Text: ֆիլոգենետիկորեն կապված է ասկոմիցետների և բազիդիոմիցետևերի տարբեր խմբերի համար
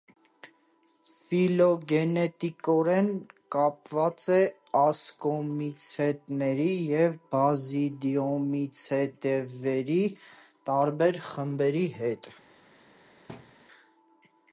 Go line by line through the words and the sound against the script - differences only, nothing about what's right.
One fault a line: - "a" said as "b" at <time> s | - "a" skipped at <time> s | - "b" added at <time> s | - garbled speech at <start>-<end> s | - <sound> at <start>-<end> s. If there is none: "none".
- "համար" said as "հետ" at 12.0 s
- thud at 13.3-13.6 s